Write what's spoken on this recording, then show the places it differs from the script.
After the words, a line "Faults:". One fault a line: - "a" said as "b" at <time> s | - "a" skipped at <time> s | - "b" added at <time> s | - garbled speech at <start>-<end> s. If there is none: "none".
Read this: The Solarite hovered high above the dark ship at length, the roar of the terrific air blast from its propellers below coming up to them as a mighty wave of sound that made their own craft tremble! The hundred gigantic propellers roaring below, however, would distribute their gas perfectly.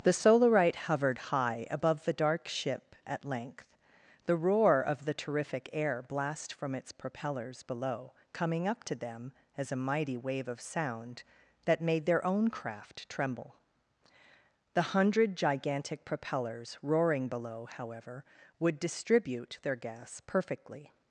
The Solarite hovered high above the dark ship at length, the roar of the terrific air blast from its propellers below coming up to them as a mighty wave of sound that made their own craft tremble! The hundred gigantic propellers roaring below, however, would distribute their gas perfectly.
Faults:
none